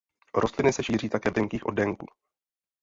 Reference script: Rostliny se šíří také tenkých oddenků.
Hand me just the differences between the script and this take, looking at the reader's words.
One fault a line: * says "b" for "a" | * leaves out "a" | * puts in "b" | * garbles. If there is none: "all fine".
all fine